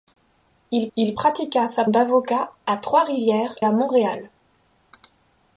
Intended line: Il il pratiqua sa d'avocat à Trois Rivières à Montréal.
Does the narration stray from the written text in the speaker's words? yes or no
no